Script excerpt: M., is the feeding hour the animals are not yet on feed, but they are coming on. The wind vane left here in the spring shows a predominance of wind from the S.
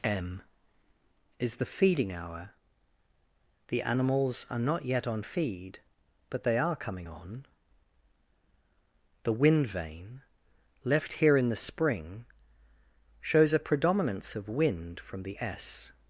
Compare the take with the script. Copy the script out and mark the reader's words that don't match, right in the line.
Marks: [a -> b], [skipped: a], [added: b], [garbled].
M., is the feeding hour the animals are not yet on feed, but they are coming on. The wind vane left here in the spring shows a predominance of wind from the S.